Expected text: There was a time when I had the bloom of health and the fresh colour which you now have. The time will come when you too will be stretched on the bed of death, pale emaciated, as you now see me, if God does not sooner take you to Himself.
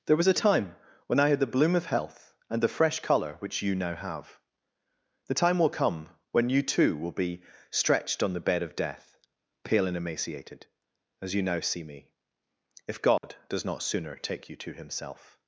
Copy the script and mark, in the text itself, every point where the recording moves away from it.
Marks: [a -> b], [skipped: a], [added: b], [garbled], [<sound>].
There was a time when I had the bloom of health and the fresh colour which you now have. The time will come when you too will be stretched on the bed of death, pale [added: and] emaciated, as you now see me, if God [dropout] does not sooner take you to Himself.